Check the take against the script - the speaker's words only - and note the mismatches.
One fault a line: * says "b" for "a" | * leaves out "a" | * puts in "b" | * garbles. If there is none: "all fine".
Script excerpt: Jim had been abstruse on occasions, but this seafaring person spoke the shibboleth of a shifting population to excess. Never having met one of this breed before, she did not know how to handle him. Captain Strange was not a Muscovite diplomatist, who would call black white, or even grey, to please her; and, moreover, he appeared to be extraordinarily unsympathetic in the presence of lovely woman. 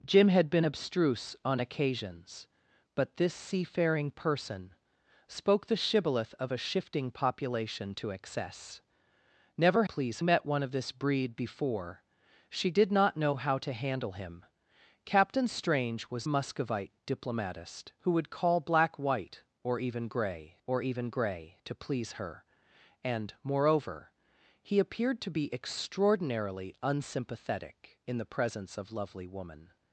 * says "please" for "having"
* leaves out "not"
* puts in "or even grey"